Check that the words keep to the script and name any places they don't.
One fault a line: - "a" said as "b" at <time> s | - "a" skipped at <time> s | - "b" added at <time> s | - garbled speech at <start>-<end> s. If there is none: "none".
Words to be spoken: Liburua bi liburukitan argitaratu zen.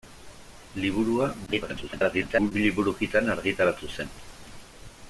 - garbled speech at 1.5-2.5 s